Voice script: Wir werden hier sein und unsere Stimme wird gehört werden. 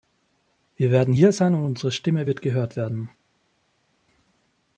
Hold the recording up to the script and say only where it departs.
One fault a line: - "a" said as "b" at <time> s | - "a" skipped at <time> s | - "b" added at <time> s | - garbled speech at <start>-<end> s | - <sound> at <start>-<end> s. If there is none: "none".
none